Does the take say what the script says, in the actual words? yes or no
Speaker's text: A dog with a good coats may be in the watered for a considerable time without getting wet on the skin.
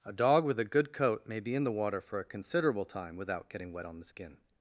no